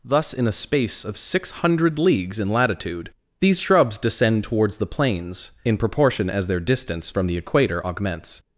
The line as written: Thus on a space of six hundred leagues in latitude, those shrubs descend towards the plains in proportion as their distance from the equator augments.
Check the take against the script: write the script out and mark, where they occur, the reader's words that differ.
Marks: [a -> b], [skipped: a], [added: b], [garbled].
Thus [on -> in] a space of six hundred leagues in latitude, [those -> these] shrubs descend towards the plains in proportion as their distance from the equator augments.